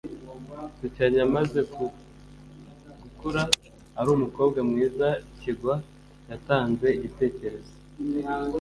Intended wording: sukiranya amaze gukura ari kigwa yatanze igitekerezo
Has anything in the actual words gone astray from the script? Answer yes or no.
yes